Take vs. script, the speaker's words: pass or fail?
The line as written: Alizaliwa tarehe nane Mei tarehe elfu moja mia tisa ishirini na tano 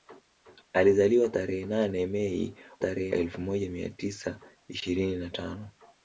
pass